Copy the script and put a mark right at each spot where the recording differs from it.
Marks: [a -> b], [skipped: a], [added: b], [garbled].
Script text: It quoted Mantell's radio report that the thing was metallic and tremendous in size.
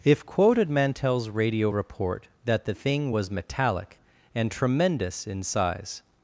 [It -> If] quoted Mantell's radio report that the thing was metallic and tremendous in size.